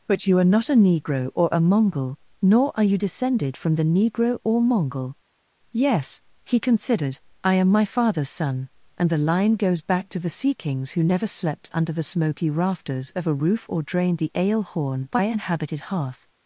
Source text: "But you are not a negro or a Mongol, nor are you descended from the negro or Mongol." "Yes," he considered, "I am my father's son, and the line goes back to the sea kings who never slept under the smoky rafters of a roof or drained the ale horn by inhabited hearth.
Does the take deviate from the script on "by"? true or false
false